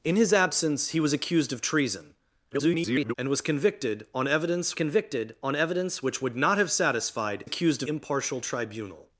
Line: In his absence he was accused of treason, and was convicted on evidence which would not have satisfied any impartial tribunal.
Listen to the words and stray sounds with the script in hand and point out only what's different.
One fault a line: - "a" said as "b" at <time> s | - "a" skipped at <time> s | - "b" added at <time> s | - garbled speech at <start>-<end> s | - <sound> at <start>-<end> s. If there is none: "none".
- garbled speech at 2.5-3.1 s
- "convicted on evidence" added at 4.7 s
- "any" said as "accused" at 7.4 s